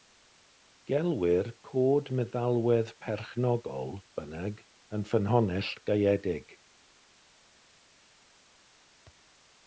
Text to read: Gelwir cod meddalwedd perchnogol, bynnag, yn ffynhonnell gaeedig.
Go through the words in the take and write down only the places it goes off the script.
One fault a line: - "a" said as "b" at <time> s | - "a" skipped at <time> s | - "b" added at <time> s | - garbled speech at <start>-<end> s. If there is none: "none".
none